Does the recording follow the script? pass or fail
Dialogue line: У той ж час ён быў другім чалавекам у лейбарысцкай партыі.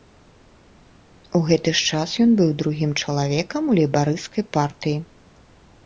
fail